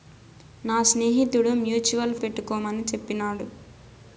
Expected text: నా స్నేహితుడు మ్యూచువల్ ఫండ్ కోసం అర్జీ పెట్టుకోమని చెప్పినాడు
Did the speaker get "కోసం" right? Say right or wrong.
wrong